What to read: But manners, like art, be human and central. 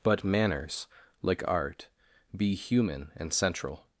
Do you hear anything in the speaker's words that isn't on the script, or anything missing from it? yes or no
no